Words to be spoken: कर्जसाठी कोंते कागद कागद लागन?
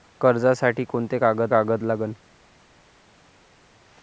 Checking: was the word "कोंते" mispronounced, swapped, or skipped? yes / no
no